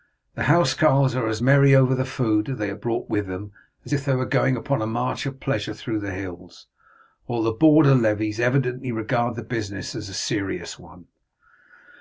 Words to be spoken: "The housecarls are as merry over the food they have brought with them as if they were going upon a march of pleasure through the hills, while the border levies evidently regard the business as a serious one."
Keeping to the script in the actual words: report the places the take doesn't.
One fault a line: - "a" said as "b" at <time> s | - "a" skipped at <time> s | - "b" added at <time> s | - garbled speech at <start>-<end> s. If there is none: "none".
none